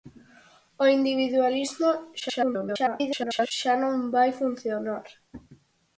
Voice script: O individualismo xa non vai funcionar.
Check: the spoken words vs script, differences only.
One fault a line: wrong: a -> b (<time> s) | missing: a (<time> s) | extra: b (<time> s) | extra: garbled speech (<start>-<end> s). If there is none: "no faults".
extra: garbled speech (2.2-3.5 s)